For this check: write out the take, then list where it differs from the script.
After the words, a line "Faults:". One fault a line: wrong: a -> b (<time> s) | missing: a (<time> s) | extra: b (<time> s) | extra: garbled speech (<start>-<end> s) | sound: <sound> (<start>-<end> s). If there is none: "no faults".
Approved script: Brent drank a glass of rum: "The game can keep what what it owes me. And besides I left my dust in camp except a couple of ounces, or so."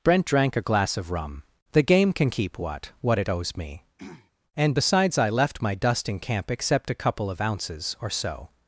Brent drank a glass of rum: "The game can keep what what it owes me. And besides I left my dust in camp except a couple of ounces, or so."
Faults:
sound: throat clearing (4.0-4.3 s)